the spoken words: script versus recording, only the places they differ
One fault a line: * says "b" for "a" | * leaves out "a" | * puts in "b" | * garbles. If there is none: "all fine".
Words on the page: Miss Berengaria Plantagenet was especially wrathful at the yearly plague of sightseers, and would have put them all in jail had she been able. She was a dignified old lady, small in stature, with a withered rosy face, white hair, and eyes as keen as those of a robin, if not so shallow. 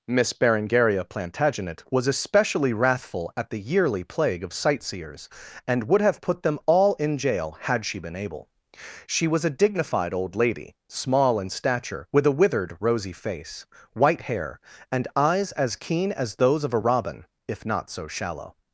all fine